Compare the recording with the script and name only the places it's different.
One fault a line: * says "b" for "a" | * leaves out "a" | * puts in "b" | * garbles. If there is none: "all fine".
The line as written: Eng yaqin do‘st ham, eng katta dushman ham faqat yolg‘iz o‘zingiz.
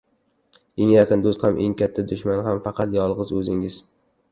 all fine